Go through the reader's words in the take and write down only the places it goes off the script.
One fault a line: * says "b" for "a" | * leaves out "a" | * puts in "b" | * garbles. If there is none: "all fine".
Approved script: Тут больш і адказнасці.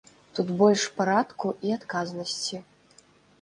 * puts in "парадку"